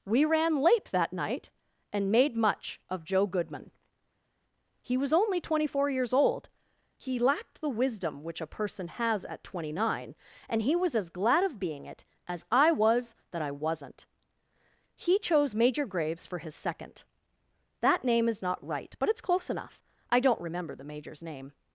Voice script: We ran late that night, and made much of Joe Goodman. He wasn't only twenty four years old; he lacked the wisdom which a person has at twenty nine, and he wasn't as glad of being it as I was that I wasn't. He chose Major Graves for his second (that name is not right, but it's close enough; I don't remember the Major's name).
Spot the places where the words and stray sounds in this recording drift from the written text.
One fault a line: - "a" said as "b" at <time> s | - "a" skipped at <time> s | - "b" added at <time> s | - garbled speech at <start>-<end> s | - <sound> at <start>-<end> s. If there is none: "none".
- "wasn't" said as "was" at 5.0 s
- "wasn't" said as "was" at 10.8 s